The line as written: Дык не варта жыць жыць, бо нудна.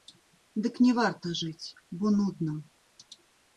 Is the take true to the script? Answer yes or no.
no